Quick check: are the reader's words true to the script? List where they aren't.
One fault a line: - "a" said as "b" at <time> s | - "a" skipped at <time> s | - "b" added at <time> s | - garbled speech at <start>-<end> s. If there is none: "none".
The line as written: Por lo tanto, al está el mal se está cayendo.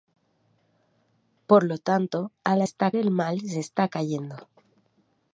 none